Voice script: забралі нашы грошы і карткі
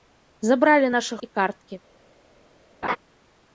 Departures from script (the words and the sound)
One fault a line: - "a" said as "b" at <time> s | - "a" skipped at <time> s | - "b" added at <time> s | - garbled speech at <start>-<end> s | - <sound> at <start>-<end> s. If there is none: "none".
- "грошы" skipped at 1.2 s
- laugh at 2.8-3.0 s